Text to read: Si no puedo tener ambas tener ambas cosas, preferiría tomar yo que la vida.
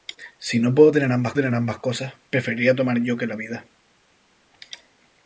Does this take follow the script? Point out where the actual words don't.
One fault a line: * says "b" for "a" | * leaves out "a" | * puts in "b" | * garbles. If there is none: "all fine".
all fine